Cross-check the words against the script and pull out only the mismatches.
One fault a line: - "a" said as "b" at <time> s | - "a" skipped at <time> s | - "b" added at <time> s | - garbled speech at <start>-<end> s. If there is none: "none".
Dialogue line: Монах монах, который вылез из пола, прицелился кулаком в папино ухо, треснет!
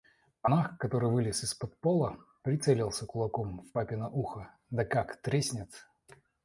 - "монах" skipped at 0.8 s
- "под" added at 1.5 s
- "да как" added at 4.7 s